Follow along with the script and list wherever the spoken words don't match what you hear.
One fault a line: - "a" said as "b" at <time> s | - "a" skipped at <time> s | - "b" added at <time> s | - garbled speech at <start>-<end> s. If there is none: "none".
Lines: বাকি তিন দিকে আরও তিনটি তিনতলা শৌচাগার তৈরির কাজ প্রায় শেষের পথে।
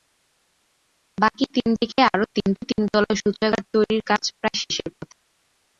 none